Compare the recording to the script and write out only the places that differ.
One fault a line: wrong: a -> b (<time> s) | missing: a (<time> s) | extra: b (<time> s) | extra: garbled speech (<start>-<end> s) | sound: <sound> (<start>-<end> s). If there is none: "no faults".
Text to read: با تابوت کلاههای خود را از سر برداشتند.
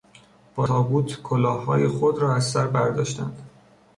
no faults